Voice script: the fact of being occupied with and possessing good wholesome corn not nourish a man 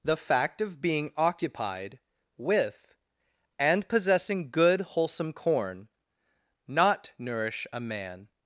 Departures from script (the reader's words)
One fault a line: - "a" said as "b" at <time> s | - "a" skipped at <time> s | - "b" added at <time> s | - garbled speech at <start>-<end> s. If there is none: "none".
none